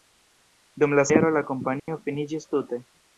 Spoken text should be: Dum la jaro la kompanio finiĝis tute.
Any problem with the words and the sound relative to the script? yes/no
yes